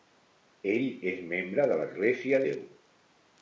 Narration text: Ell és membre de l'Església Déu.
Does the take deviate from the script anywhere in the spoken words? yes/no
no